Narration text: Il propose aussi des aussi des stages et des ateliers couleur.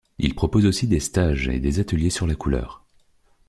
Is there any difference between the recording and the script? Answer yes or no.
yes